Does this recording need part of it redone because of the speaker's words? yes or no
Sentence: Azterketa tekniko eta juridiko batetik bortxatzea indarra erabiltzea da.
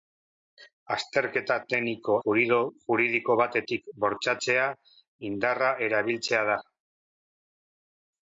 yes